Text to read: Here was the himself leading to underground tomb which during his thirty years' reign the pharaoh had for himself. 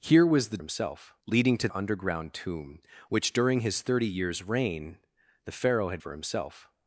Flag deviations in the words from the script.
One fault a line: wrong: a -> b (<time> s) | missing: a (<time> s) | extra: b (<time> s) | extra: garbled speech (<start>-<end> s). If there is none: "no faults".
no faults